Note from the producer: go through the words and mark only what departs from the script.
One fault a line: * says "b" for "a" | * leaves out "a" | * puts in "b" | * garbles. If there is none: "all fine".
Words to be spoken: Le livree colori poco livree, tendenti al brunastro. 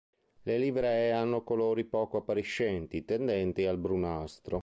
* puts in "hanno"
* says "appariscenti" for "livree"